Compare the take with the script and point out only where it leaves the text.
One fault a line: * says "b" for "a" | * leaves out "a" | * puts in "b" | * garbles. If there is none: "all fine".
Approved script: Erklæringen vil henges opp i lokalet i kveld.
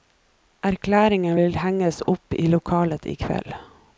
all fine